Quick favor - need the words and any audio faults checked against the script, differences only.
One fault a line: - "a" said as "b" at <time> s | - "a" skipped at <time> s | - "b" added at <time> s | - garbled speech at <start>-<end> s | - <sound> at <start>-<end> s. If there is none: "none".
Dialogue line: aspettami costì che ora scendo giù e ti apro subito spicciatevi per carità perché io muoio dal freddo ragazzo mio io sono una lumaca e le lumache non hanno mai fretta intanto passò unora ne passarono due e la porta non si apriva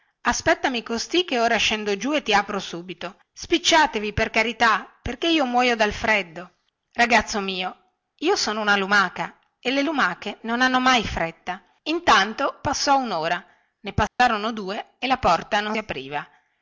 - dropout at 14.1-14.2 s
- "si" skipped at 15.8 s